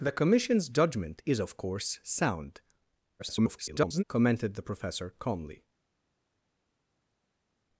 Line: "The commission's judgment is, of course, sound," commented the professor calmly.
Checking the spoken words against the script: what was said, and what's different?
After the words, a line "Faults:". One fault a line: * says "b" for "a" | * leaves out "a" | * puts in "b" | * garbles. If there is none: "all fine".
"The commission's judgment is, of course, sound," [garbled] commented the professor calmly.
Faults:
* garbles